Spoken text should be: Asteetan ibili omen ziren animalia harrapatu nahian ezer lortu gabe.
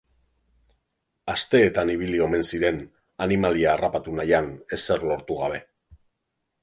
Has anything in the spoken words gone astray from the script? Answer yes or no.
no